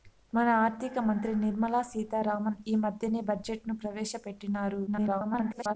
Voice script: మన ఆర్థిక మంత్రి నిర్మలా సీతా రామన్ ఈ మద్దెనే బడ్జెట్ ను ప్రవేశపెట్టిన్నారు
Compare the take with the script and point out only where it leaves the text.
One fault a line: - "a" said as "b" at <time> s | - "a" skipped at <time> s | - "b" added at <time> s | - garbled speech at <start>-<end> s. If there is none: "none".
- garbled speech at 4.9-5.7 s